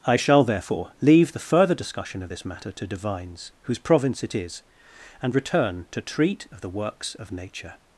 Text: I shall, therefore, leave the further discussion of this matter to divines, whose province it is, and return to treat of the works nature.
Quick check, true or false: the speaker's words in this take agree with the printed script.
false